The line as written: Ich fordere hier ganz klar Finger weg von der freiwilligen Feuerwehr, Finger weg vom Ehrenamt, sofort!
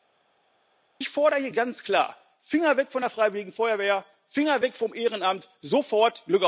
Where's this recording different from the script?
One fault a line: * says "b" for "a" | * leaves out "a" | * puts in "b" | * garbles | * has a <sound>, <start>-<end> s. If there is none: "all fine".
all fine